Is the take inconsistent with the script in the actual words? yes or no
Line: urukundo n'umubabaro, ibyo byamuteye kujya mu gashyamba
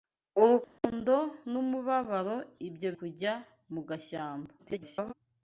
yes